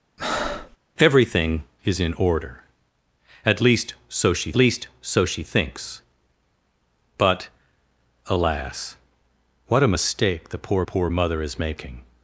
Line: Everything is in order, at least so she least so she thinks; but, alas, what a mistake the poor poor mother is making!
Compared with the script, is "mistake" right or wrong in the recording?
right